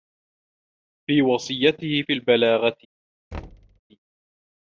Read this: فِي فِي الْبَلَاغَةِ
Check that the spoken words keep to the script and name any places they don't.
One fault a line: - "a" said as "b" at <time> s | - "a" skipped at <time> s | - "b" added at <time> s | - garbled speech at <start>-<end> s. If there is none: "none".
- "وَصِيَّتِهِ" added at 1.2 s